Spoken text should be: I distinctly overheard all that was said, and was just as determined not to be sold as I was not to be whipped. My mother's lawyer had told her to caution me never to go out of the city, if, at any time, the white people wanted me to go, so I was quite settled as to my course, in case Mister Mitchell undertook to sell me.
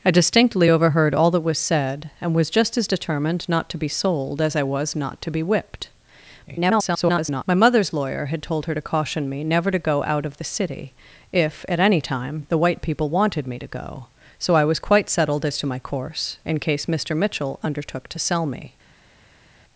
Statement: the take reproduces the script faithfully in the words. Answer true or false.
false